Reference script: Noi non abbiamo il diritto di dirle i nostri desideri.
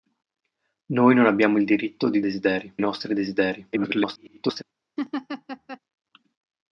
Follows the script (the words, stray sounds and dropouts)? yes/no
no